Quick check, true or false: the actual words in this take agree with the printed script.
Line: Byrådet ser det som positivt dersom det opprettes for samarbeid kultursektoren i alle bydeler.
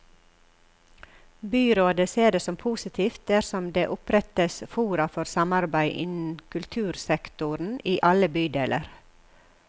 false